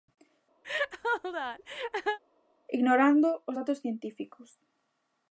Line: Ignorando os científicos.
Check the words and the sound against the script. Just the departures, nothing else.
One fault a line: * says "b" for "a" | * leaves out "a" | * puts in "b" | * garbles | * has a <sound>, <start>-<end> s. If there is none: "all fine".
* has a laugh, 0.6-2.2 s
* puts in "datos"